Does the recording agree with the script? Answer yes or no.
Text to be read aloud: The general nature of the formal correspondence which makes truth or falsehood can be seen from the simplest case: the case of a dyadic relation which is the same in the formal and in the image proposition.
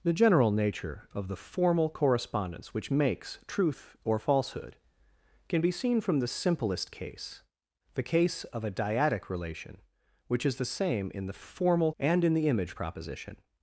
yes